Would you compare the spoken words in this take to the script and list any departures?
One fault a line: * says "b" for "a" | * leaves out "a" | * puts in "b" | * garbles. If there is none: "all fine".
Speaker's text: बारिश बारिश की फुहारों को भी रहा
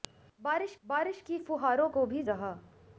all fine